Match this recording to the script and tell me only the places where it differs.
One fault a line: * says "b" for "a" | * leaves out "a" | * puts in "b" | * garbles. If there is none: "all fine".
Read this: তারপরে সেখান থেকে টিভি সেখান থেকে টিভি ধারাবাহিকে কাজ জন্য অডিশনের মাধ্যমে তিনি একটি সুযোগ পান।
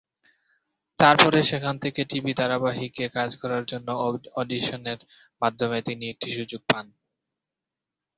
* leaves out "সেখান থেকে টিভি"
* puts in "করার"